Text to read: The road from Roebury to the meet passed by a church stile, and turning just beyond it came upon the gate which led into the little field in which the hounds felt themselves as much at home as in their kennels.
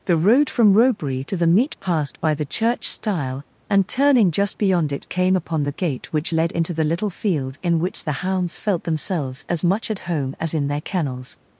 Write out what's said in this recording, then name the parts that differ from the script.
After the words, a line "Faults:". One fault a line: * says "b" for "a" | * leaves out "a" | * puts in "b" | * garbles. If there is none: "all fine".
The road from Roebury to the meet passed by the church stile, and turning just beyond it came upon the gate which led into the little field in which the hounds felt themselves as much at home as in their kennels.
Faults:
* says "the" for "a"